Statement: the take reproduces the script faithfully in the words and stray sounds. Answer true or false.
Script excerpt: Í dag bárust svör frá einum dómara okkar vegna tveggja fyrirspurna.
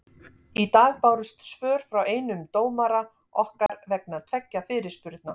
false